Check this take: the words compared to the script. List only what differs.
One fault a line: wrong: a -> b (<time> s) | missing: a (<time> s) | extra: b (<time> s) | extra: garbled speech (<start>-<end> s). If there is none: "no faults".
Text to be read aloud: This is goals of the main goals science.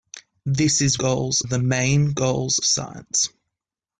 no faults